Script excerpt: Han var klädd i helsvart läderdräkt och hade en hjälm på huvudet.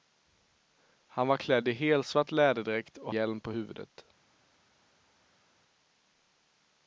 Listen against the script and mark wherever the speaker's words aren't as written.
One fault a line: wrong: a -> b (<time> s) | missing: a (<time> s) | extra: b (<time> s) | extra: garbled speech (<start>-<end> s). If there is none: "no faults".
missing: hade en (3.1 s)